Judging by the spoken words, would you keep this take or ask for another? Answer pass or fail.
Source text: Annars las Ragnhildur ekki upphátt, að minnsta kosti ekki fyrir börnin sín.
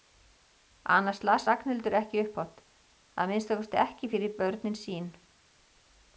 pass